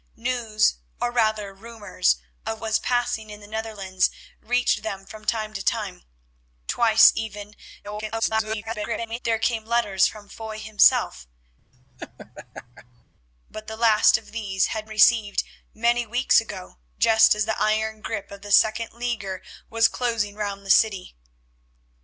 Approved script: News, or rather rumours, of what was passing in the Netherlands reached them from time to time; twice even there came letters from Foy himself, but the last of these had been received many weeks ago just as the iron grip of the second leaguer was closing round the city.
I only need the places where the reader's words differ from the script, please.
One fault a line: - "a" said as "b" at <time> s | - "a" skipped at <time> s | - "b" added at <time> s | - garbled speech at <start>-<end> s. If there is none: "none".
- "what" skipped at 2.6 s
- garbled speech at 7.8-9.2 s
- "been" skipped at 14.9 s